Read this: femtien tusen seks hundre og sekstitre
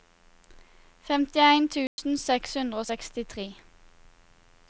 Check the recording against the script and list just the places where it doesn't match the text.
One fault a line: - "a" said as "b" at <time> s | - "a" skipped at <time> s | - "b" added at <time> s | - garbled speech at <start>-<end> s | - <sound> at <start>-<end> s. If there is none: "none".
- dropout at 1.9-2.0 s